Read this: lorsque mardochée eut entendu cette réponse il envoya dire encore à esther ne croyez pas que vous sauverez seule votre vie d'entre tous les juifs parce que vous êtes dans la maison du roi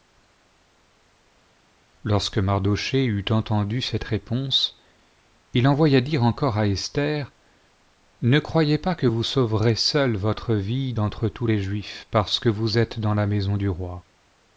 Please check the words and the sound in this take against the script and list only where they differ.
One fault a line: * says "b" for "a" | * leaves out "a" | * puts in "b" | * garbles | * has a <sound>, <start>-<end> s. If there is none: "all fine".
all fine